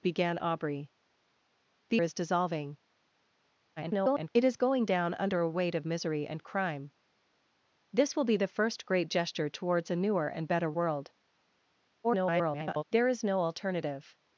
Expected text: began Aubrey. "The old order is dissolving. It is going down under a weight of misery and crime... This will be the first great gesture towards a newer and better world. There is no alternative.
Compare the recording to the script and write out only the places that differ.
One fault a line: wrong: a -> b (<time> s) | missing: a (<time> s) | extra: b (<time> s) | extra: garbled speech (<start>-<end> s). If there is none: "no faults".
missing: old order (2.0 s)
extra: garbled speech (3.8-4.3 s)
extra: garbled speech (12.0-12.8 s)